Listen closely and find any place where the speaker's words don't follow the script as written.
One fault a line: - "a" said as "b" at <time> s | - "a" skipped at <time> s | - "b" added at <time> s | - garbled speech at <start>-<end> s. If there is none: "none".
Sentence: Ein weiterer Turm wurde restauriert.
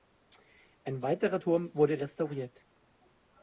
none